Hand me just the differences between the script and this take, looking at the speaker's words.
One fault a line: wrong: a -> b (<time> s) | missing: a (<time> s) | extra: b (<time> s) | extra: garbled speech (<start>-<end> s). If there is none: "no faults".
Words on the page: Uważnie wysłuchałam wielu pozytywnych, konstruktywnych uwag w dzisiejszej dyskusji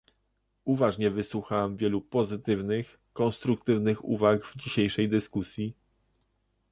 no faults